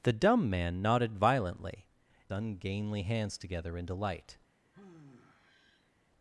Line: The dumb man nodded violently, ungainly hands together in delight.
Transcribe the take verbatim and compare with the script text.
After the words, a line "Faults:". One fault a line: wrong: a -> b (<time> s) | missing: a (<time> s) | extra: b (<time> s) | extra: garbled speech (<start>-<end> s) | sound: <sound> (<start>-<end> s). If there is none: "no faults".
The dumb man nodded violently, ungainly hands together in delight.
Faults:
sound: sigh (4.7-5.9 s)